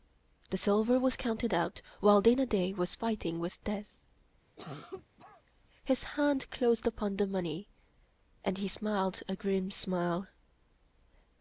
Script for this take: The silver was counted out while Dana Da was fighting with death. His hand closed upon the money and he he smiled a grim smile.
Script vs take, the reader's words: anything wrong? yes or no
yes